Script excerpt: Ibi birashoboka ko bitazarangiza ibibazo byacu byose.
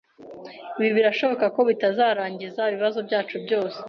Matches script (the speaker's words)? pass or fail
pass